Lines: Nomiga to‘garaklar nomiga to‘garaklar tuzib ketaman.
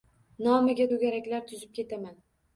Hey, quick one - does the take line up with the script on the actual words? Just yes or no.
no